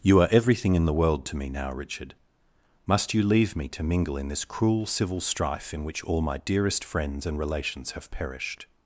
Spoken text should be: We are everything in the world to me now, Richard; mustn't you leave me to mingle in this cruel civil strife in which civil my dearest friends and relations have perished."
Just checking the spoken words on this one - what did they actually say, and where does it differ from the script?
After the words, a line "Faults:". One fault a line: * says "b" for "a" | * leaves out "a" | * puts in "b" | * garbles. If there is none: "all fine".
You are everything in the world to me now, Richard; must you leave me to mingle in this cruel civil strife in which all my dearest friends and relations have perished."
Faults:
* says "You" for "We"
* says "must" for "mustn't"
* says "all" for "civil"